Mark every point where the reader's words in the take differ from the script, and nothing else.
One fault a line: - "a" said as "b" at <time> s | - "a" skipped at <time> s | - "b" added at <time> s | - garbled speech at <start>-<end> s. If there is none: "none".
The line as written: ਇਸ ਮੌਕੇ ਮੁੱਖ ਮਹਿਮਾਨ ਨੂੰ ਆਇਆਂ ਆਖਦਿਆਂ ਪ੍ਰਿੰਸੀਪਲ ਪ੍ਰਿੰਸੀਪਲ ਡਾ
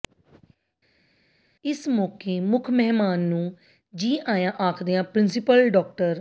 - "ਜੀ" added at 3.9 s
- "ਪ੍ਰਿੰਸੀਪਲ" skipped at 5.7 s